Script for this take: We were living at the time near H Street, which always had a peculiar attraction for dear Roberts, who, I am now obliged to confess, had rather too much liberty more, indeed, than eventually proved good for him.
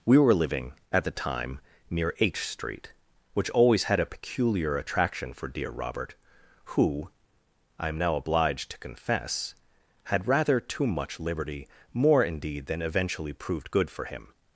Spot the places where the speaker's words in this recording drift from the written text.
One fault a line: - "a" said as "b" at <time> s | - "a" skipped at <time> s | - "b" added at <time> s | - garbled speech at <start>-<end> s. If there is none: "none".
- "Roberts" said as "Robert" at 5.7 s